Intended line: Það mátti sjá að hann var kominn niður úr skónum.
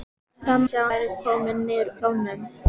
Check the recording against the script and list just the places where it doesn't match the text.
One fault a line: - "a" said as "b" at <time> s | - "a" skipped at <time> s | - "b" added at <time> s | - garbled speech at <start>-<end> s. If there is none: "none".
- "mátti" skipped at 0.6 s
- "hann" skipped at 0.9 s
- "úr" skipped at 1.9 s